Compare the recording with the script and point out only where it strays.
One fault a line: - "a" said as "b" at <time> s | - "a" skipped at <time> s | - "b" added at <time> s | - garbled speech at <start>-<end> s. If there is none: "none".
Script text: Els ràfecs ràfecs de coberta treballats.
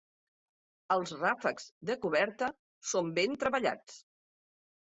- "ràfecs" skipped at 1.7 s
- "són ben" added at 3.0 s